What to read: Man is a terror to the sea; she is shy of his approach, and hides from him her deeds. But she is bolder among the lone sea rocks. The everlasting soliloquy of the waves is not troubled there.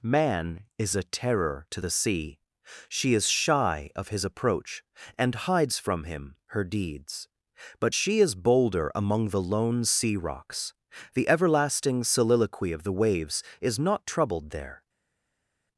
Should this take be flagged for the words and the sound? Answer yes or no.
no